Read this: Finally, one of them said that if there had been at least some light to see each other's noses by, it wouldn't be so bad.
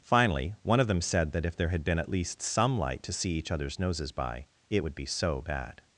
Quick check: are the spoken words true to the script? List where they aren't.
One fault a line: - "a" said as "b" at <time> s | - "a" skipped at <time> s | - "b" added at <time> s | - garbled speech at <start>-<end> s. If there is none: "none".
- "wouldn't" said as "would" at 4.8 s